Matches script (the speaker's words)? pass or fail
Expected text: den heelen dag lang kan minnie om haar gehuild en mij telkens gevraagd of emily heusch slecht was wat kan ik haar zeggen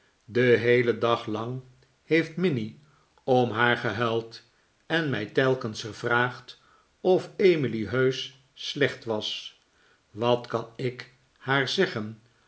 fail